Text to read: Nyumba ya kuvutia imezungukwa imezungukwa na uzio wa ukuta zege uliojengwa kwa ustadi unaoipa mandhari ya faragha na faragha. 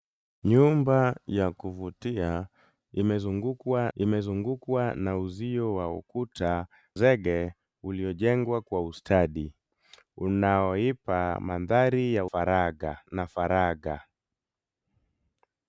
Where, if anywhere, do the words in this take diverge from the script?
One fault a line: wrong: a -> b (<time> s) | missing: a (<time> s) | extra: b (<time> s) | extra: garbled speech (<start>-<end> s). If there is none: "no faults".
no faults